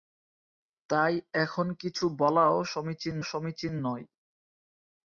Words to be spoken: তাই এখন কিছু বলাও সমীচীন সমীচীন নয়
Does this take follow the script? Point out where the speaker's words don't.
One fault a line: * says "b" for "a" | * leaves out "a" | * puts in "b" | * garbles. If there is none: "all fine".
all fine